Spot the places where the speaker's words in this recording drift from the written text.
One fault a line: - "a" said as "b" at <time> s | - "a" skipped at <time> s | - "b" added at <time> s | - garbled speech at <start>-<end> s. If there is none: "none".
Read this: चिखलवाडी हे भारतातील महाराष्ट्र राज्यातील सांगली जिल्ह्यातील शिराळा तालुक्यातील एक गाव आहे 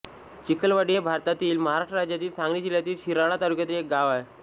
none